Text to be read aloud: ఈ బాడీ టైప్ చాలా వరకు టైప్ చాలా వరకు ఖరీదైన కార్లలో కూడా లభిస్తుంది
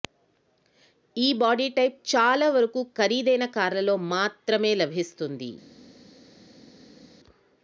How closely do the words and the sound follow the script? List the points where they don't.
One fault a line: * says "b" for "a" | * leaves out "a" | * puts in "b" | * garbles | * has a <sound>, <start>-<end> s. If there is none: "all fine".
* leaves out "టైప్ చాలా వరకు"
* says "మాత్రమే" for "కూడా"